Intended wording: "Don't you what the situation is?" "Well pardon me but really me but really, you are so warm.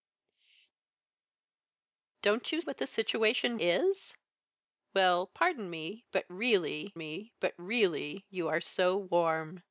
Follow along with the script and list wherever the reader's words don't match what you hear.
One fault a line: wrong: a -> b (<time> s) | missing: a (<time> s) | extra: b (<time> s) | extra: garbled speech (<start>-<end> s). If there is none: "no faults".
no faults